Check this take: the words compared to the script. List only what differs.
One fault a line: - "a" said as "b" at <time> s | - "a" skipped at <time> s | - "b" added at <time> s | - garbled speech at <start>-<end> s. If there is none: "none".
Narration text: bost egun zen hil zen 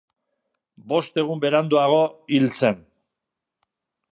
- "zen" said as "beranduago" at 1.4 s